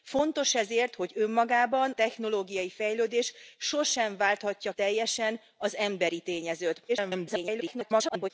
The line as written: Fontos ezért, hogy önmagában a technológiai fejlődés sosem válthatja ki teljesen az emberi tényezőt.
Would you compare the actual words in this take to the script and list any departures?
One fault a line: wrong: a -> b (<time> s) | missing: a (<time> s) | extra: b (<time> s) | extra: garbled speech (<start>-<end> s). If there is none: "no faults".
missing: a (1.9 s)
missing: ki (4.7 s)
extra: garbled speech (6.9-8.3 s)